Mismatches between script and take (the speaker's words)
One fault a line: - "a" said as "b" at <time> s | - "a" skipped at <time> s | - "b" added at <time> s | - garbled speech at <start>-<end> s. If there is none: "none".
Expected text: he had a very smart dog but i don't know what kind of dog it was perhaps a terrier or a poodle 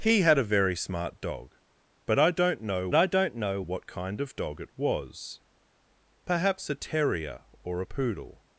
- "i don't know" added at 2.9 s